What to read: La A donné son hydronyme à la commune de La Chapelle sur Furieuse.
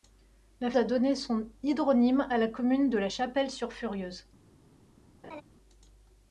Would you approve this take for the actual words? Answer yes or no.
yes